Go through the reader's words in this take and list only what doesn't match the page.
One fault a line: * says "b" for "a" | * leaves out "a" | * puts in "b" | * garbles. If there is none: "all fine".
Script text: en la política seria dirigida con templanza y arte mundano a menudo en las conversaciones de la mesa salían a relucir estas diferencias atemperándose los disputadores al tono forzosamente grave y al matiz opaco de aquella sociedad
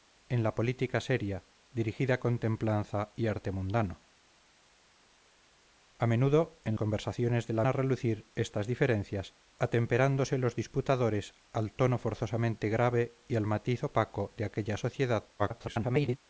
* leaves out "las"
* leaves out "mesa salían"
* garbles